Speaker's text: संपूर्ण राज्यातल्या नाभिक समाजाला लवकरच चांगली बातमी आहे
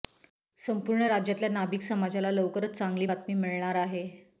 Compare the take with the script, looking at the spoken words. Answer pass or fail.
fail